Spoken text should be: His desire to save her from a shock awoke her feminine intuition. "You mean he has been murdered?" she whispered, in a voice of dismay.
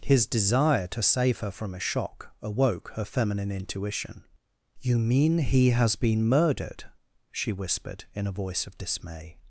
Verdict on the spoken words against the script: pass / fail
pass